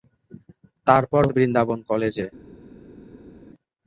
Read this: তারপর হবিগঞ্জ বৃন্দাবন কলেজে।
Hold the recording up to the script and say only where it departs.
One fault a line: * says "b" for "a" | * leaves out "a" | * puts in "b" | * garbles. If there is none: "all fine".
* leaves out "হবিগঞ্জ"